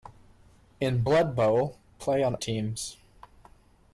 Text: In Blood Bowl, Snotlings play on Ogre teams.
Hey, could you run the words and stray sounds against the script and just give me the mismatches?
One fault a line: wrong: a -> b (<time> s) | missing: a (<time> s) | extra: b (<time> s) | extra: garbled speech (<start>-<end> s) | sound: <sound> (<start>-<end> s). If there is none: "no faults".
missing: Snotlings (1.8 s)
missing: Ogre (2.4 s)